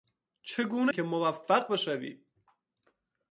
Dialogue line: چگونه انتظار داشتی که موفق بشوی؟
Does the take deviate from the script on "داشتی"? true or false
true